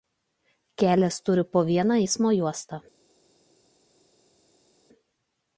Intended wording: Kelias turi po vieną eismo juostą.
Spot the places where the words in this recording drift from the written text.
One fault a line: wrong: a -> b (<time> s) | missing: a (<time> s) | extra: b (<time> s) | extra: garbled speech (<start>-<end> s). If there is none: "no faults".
no faults